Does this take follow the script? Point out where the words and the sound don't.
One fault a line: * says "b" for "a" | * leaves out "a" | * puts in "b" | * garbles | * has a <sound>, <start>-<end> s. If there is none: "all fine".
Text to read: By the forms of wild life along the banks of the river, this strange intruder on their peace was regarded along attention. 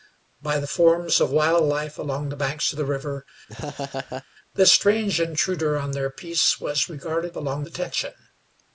* has a laugh, 3.5-4.2 s